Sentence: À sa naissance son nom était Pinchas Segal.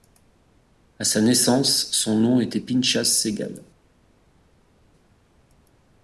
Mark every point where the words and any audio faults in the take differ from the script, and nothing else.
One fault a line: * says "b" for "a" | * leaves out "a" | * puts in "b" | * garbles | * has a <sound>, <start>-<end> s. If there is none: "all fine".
all fine